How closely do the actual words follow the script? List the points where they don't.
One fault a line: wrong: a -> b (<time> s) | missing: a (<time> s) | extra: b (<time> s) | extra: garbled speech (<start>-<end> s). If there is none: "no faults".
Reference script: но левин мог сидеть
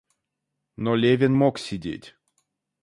no faults